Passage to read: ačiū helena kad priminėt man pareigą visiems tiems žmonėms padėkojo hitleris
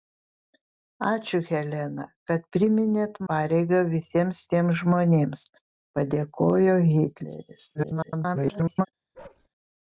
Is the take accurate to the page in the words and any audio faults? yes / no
no